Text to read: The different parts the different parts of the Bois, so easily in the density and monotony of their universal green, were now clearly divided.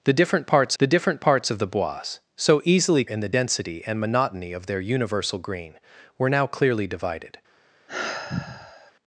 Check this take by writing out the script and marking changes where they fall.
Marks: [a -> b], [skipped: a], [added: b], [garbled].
The different parts the different parts of the Bois, so easily in the density and monotony of their universal green, were now clearly divided.